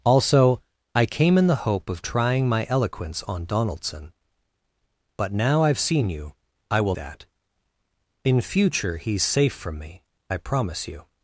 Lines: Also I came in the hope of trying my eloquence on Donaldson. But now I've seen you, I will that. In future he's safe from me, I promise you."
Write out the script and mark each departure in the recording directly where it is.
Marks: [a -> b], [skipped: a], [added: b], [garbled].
Also I came in the hope of trying my eloquence on Donaldson. But now I've seen you, I will that. In future he's safe from me, I promise you."